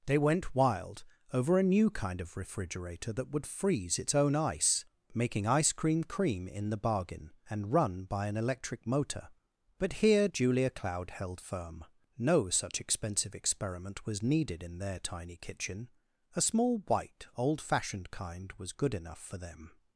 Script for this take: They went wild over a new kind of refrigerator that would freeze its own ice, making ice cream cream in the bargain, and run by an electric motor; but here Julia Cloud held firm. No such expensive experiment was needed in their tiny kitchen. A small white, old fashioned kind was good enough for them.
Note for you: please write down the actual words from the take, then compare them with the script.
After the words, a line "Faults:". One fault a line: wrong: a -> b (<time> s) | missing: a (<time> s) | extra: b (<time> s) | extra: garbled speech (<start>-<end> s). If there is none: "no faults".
They went wild over a new kind of refrigerator that would freeze its own ice, making ice cream cream in the bargain, and run by an electric motor; but here Julia Cloud held firm. No such expensive experiment was needed in their tiny kitchen. A small white, old fashioned kind was good enough for them.
Faults:
no faults